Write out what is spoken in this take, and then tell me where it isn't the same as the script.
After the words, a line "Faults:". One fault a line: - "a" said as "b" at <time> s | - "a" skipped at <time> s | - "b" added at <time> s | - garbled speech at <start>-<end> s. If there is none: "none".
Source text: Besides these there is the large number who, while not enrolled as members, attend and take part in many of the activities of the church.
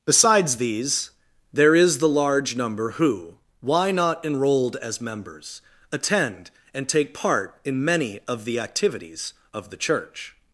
Besides these there is the large number who, why not enrolled as members, attend and take part in many of the activities of the church.
Faults:
- "while" said as "why" at 3.6 s